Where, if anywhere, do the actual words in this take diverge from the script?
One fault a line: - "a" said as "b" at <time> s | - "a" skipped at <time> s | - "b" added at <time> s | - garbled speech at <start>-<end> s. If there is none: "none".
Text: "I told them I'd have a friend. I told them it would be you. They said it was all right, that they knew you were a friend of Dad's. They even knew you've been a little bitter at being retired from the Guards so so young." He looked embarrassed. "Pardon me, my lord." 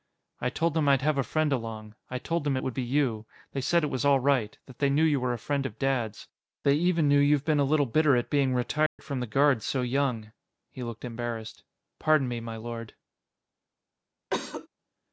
- "along" added at 1.5 s
- "so" skipped at 9.8 s